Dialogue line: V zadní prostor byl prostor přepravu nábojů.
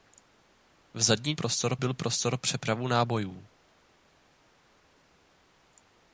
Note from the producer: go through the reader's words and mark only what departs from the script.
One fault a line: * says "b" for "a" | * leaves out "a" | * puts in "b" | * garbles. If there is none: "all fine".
all fine